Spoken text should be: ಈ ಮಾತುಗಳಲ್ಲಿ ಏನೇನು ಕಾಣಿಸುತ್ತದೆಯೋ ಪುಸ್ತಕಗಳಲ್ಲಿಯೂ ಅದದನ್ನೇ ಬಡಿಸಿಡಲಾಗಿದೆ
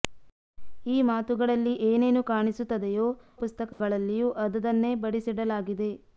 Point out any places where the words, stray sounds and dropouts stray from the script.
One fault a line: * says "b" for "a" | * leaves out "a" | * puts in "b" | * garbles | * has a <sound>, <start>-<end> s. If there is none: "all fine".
* has a dropout, 3.7-3.8 s